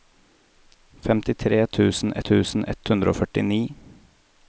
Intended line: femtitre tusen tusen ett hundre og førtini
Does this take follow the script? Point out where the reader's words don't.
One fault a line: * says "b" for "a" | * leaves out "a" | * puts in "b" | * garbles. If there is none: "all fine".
all fine